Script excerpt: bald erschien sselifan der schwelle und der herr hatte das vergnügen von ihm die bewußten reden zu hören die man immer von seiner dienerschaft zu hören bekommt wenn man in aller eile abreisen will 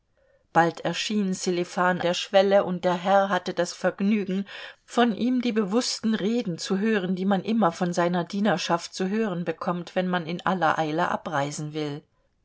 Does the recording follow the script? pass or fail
pass